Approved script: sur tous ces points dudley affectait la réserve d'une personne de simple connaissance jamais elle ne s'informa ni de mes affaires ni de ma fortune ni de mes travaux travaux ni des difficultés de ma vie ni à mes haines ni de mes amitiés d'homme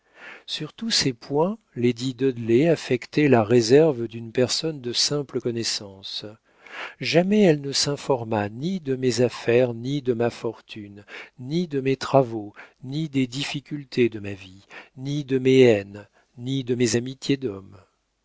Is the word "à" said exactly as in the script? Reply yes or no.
no